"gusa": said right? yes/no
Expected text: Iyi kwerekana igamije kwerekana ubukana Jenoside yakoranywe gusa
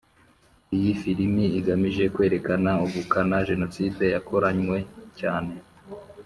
no